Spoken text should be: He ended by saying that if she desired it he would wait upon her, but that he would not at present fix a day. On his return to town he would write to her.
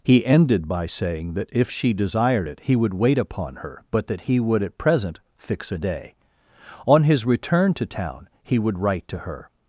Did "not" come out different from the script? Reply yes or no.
yes